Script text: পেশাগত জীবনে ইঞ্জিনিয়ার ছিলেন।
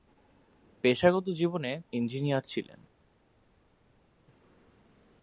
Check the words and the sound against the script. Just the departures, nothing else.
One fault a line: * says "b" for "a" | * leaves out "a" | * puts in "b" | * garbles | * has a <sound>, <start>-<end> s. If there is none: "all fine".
all fine